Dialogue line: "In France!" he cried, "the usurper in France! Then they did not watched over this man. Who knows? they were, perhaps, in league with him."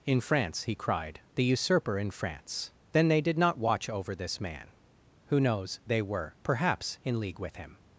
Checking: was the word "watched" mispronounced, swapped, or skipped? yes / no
yes